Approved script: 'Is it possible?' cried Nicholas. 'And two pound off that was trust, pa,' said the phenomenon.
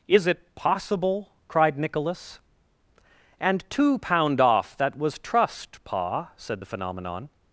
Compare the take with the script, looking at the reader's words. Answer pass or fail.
pass